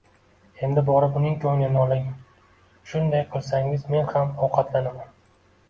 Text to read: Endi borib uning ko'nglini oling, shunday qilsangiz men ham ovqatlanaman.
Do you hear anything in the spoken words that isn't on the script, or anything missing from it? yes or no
no